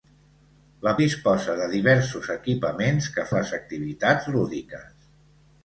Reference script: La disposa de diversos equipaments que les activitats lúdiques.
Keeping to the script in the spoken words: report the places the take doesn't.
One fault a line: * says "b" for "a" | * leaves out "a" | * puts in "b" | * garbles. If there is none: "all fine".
all fine